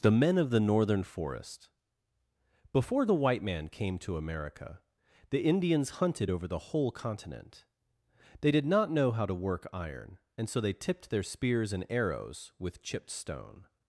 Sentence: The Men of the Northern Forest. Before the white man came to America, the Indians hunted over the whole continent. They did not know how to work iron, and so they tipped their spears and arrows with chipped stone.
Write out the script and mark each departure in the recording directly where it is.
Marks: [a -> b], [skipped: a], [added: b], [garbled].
The Men of the Northern Forest. Before the white man came to America, the Indians hunted over the whole continent. They did not know how to work iron, and so they tipped their spears and arrows with chipped stone.